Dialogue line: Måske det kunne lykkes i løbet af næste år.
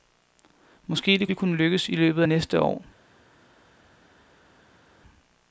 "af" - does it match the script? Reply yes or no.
no